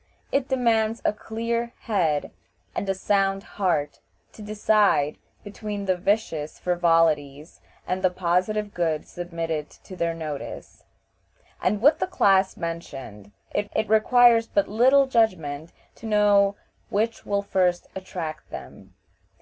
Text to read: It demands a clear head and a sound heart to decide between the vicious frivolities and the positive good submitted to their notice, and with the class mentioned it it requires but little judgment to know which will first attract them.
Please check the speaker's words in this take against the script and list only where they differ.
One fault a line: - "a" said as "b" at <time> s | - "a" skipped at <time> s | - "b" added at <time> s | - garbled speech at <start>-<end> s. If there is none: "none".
none